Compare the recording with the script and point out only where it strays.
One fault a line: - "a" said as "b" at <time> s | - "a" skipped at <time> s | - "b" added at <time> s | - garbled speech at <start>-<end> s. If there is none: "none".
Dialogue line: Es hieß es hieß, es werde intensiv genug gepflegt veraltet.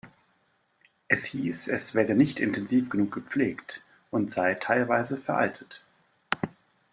- "hieß es werde" said as "werde nicht" at 1.9 s
- "und sei teilweise" added at 4.1 s